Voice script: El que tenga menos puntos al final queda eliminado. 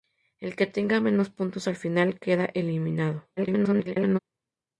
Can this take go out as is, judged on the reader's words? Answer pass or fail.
fail